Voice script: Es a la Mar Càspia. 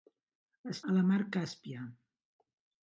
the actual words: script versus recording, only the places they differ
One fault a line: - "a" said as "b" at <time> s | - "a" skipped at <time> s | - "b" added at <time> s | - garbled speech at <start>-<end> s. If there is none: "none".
none